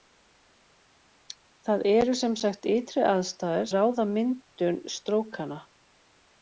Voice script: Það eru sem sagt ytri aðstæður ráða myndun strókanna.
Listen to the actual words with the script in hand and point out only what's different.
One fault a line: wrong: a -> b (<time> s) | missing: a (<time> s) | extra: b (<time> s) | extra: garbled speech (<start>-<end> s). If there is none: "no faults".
no faults